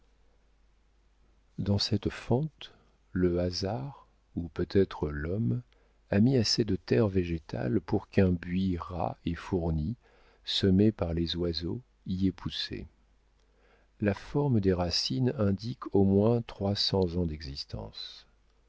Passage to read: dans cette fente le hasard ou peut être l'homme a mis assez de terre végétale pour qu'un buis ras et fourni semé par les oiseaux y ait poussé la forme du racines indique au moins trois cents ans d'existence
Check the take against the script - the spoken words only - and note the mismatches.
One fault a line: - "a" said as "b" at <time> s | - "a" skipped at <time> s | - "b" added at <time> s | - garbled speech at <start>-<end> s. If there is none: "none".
- "du" said as "des" at 14.6 s